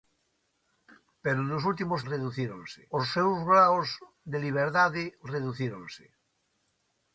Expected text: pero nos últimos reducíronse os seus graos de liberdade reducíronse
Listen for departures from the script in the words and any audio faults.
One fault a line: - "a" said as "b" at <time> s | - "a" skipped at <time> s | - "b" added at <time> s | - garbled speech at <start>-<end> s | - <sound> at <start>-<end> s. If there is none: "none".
none